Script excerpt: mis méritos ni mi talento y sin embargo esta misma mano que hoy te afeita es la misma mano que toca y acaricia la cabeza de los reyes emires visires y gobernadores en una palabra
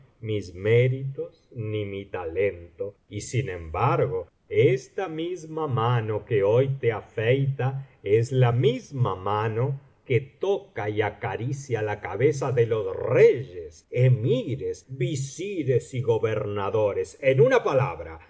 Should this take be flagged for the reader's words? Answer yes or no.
no